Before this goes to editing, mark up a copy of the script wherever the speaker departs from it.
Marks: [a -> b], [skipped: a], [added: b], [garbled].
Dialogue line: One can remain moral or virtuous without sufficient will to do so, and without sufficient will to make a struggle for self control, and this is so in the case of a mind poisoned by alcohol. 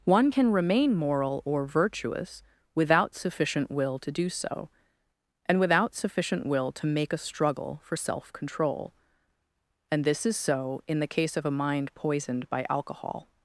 One can remain moral or virtuous without sufficient will to do so, and without sufficient will to make a struggle for self control, and this is so in the case of a mind poisoned by alcohol.